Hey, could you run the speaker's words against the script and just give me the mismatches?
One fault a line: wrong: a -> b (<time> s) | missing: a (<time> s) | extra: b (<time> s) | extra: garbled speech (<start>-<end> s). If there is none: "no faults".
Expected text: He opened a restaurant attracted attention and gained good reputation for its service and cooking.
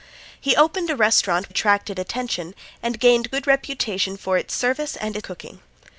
no faults